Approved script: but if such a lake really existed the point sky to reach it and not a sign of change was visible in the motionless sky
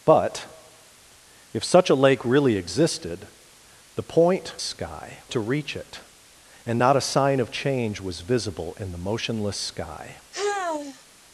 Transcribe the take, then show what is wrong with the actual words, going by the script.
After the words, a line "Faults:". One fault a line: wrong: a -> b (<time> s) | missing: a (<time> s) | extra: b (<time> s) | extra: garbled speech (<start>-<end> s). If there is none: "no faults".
but if such a lake really existed the point sky to reach it and not a sign of change was visible in the motionless sky
Faults:
no faults